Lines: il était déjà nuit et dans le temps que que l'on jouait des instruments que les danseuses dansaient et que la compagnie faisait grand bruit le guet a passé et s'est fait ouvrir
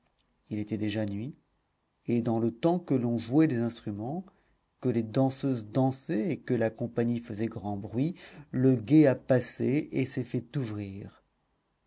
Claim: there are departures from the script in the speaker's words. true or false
true